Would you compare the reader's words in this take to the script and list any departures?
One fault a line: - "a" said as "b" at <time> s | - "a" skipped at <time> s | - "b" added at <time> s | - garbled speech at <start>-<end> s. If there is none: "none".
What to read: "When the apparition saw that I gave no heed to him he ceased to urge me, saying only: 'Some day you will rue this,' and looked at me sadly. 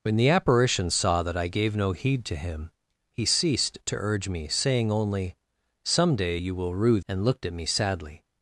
- "this" skipped at 7.0 s